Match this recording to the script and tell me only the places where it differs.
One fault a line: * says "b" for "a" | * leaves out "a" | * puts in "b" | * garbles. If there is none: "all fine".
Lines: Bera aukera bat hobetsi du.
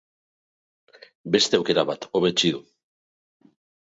* says "Beste" for "Bera"